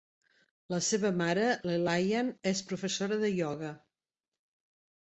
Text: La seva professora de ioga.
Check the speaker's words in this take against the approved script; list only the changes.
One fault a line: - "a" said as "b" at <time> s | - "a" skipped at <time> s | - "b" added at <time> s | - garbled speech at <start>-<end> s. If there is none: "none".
- "mare l'Elaine és" added at 1.2 s